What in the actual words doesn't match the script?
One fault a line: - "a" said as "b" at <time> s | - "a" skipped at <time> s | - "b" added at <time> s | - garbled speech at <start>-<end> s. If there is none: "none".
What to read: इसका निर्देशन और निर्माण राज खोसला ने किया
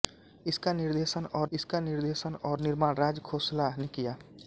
- "इसका निर्देशन और" added at 1.5 s